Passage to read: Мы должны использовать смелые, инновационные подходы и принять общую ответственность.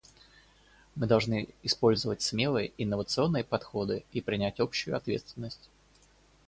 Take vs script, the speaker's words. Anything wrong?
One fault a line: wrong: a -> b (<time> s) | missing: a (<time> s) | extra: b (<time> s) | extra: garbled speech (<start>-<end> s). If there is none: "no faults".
no faults